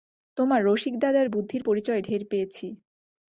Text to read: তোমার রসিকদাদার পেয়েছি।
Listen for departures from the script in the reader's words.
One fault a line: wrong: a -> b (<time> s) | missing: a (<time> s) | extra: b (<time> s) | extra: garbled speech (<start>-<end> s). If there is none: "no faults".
extra: বুদ্ধির পরিচয় ঢের (1.3 s)